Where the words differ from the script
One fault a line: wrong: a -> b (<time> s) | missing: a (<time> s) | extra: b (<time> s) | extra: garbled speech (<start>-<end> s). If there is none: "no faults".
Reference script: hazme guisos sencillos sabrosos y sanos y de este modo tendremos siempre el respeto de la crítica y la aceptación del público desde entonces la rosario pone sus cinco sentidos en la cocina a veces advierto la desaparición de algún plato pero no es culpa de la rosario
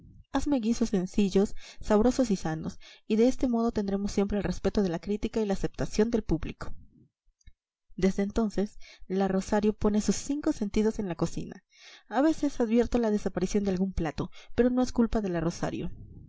no faults